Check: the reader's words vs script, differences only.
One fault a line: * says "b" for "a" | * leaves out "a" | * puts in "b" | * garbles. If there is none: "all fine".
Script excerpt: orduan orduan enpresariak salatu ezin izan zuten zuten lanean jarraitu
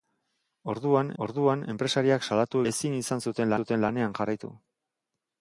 all fine